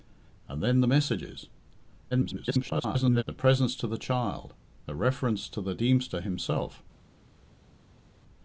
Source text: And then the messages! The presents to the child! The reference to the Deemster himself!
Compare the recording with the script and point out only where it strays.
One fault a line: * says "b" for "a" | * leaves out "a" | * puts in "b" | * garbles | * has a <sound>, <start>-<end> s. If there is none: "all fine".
* garbles